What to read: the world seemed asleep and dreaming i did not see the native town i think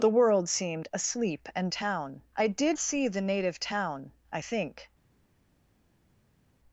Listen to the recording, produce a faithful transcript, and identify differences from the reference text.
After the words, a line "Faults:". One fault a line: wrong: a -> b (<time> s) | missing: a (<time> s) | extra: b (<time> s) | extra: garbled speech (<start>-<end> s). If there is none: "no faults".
the world seemed asleep and town i did see the native town i think
Faults:
wrong: dreaming -> town (1.7 s)
missing: not (2.8 s)